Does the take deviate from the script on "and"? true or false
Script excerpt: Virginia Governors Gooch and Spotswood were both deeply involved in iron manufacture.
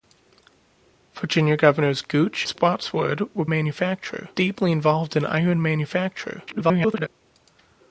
true